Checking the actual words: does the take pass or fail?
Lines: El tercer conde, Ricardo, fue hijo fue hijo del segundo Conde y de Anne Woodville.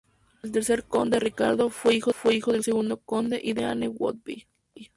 pass